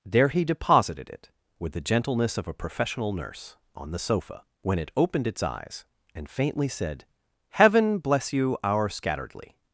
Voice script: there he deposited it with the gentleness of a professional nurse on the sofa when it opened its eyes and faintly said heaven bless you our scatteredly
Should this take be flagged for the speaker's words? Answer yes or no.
no